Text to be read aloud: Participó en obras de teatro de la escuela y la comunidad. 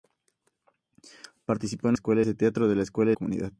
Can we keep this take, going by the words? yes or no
no